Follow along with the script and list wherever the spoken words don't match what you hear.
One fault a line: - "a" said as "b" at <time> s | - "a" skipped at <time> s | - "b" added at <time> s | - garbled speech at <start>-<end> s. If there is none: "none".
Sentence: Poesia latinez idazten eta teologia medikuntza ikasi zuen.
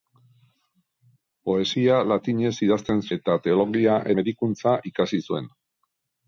none